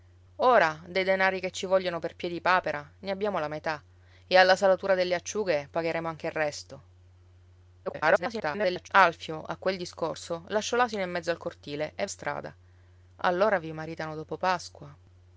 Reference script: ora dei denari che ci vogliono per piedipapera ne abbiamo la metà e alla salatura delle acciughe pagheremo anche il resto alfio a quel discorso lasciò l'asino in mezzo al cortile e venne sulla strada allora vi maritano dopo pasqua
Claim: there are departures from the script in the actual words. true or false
true